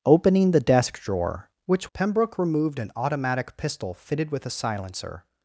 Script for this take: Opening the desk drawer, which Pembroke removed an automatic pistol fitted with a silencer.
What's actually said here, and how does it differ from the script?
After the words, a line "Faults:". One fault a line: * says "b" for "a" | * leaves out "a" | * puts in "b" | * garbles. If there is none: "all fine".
Opening the desk drawer, which Pembroke removed an automatic pistol fitted with a silencer.
Faults:
all fine